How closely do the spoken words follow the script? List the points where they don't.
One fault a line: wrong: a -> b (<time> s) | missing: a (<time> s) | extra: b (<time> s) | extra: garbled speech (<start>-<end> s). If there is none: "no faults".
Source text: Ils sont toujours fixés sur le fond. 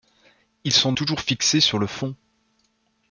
no faults